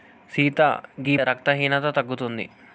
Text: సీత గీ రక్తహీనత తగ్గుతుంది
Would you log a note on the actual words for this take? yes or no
no